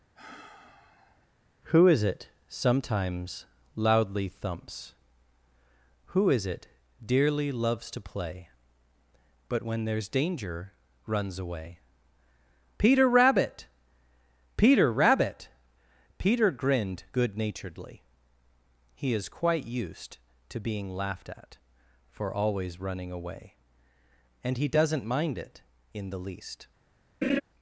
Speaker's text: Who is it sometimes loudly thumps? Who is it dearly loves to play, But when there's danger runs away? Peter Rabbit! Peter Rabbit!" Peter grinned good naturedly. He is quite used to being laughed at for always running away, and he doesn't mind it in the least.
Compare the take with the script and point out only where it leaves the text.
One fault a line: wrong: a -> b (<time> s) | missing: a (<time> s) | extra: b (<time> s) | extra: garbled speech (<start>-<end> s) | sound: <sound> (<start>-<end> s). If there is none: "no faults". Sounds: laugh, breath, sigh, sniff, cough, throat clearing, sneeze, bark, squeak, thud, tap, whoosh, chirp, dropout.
sound: sigh (0.2-1.3 s)
sound: laugh (27.2-27.4 s)